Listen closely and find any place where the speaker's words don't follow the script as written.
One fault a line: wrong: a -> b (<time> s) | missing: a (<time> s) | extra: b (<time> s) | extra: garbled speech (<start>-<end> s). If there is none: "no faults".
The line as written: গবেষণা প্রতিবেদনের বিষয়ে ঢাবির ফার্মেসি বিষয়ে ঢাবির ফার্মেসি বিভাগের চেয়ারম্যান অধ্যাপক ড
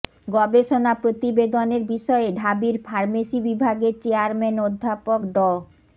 missing: বিষয়ে ঢাবির ফার্মেসি (3.4 s)